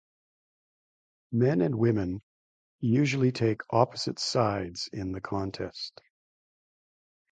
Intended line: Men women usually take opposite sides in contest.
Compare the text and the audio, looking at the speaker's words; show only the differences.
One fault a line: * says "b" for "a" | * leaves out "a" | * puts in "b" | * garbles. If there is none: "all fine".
* puts in "and"
* puts in "the"